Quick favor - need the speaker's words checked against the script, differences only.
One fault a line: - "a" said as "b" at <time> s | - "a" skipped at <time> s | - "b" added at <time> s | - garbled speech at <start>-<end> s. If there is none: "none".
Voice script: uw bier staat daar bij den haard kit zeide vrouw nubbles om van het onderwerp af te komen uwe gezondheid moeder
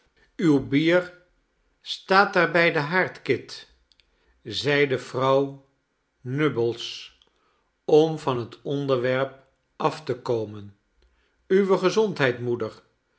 none